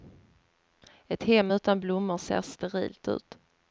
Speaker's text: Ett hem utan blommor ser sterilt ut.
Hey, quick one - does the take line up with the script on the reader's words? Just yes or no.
yes